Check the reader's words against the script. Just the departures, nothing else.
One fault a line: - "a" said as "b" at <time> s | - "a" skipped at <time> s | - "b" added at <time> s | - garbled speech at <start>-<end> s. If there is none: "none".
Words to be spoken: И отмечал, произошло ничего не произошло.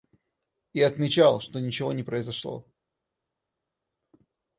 - "произошло" said as "что" at 1.4 s